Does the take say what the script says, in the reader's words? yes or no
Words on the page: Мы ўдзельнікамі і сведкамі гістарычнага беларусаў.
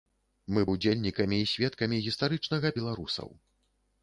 yes